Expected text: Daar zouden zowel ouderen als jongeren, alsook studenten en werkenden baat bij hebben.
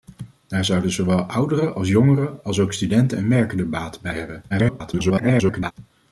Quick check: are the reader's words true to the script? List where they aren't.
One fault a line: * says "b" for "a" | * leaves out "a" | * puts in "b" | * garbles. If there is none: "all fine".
* garbles